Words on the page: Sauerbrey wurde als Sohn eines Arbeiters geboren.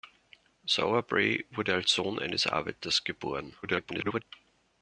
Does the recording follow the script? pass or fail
fail